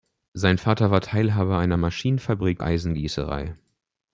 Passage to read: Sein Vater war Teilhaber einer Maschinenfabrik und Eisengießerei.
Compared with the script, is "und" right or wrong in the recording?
wrong